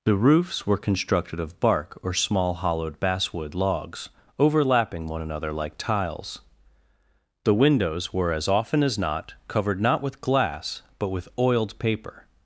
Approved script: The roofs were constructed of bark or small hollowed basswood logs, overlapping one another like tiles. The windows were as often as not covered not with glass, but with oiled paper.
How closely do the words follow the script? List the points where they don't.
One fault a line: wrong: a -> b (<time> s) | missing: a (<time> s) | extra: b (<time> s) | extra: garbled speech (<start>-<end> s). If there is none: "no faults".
no faults